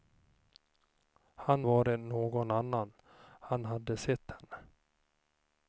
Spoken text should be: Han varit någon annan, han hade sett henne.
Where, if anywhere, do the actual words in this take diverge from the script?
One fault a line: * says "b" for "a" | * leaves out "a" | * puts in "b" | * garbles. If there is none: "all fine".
all fine